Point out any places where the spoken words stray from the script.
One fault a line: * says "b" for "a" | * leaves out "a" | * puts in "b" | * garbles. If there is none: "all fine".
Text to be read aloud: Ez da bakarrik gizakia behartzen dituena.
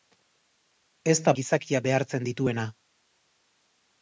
* leaves out "bakarrik"